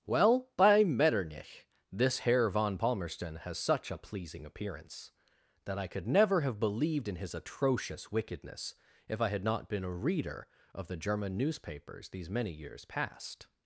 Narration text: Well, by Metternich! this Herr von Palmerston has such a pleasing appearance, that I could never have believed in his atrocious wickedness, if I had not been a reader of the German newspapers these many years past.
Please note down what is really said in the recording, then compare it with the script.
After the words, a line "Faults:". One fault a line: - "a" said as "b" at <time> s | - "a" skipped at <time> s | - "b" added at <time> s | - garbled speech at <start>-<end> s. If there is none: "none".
Well, by Metternich! this Herr von Palmerston has such a pleasing appearance, that I could never have believed in his atrocious wickedness, if I had not been a reader of the German newspapers these many years past.
Faults:
none